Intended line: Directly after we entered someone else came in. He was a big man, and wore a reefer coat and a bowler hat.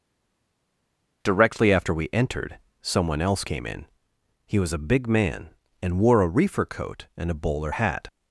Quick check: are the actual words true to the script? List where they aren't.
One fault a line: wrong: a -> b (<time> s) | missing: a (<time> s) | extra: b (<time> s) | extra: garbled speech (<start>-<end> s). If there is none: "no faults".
no faults